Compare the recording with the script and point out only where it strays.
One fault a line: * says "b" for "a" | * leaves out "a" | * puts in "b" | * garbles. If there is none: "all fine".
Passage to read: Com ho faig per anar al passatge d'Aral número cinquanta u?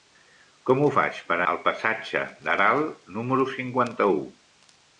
* leaves out "anar"